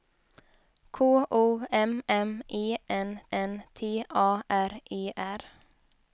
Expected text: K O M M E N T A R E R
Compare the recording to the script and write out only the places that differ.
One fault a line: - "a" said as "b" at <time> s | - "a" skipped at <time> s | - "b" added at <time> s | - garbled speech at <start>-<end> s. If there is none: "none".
- "N" added at 3.3 s